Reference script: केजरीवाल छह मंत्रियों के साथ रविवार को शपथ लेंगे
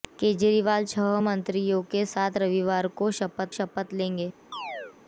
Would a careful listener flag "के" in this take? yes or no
no